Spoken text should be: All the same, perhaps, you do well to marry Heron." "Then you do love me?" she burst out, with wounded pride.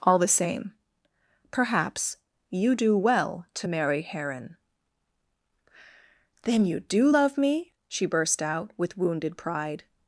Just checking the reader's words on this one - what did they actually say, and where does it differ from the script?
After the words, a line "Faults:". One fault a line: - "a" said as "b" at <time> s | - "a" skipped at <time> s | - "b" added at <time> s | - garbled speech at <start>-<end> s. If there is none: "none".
All the same, perhaps, you do well to marry Heron." "Then you do love me?" she burst out, with wounded pride.
Faults:
none